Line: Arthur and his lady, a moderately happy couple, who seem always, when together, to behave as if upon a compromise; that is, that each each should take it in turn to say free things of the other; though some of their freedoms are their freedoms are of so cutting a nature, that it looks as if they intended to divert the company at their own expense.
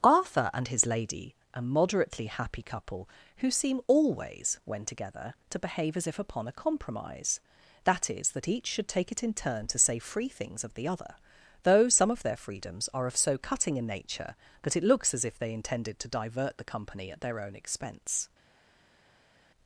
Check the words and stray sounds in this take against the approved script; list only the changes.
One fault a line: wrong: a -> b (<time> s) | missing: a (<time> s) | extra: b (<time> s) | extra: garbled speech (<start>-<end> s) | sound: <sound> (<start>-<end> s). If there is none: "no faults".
missing: each (8.7 s)
missing: their freedoms are (13.1 s)